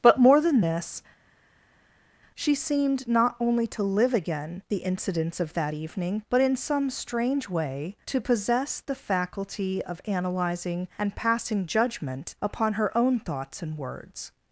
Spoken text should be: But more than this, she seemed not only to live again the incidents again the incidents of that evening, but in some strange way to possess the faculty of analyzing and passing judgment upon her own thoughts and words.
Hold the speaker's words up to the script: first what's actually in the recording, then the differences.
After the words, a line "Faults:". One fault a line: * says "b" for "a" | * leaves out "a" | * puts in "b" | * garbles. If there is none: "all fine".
But more than this, she seemed not only to live again the incidents of that evening, but in some strange way to possess the faculty of analyzing and passing judgment upon her own thoughts and words.
Faults:
* leaves out "again the incidents"